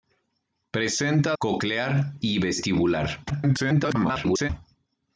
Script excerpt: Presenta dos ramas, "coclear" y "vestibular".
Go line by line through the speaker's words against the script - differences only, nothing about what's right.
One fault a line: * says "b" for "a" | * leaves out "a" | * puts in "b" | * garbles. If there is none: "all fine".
* leaves out "dos ramas"
* garbles